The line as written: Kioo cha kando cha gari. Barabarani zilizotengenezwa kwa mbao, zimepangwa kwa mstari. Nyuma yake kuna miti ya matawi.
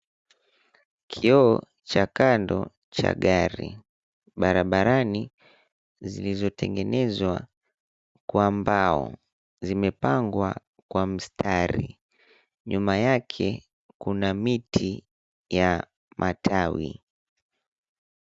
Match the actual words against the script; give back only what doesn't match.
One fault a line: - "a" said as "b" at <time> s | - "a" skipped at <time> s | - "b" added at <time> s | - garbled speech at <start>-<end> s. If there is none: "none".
none